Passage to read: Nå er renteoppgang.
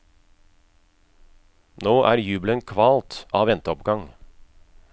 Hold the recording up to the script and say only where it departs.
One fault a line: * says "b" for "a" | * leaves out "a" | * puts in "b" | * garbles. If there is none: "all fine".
* puts in "jubelen kvalt av"